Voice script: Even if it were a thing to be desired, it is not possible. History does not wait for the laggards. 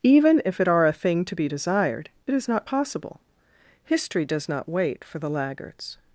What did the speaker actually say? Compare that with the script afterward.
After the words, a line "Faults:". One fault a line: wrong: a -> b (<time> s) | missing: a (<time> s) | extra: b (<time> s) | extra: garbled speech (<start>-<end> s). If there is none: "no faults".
Even if it are a thing to be desired, it is not possible. History does not wait for the laggards.
Faults:
wrong: were -> are (0.7 s)